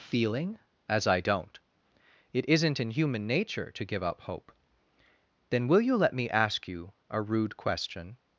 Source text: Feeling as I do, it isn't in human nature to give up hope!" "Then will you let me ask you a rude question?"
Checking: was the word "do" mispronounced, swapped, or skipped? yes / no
yes